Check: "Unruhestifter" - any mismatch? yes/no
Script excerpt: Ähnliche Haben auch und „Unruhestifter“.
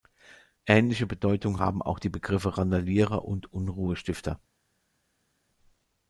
no